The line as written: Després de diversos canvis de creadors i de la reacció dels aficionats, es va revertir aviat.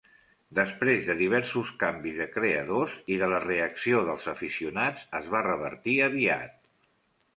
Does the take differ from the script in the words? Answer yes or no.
no